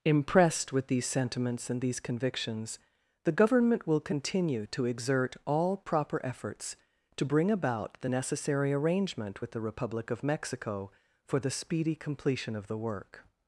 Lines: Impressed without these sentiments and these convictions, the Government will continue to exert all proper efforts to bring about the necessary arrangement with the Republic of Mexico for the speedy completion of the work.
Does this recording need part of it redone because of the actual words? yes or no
yes